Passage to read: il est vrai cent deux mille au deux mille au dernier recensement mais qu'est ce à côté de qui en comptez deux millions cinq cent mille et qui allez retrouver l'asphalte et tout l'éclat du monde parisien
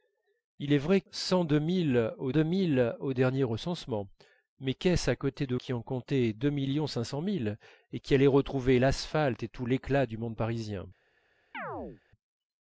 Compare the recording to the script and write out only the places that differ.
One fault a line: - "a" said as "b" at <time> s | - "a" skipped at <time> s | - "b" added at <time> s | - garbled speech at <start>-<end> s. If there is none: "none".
none